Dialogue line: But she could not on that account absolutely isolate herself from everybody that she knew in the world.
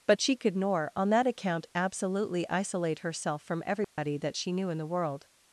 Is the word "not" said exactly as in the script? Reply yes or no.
no